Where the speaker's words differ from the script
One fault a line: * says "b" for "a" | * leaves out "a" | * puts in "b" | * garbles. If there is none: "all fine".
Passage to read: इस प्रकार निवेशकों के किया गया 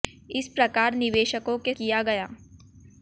all fine